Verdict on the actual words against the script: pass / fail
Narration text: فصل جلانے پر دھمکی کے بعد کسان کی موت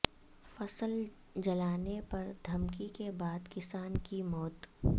pass